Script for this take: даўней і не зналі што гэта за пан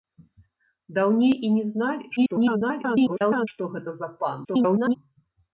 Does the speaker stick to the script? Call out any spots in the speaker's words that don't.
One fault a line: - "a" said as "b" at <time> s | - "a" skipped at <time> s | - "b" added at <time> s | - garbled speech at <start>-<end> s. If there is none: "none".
- garbled speech at 2.2-3.5 s
- garbled speech at 4.4-5.0 s